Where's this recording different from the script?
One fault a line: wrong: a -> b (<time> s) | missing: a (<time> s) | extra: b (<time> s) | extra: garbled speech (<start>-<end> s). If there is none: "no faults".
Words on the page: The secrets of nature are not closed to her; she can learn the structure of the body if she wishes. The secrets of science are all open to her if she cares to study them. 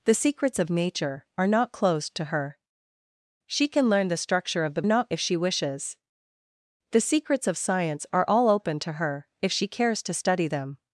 wrong: body -> not (4.8 s)